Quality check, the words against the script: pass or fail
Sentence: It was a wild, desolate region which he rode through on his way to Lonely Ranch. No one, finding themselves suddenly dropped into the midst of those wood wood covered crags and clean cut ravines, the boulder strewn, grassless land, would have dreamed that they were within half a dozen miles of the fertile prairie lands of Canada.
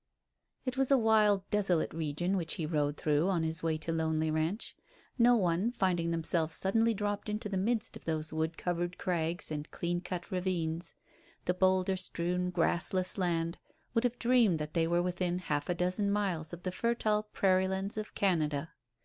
fail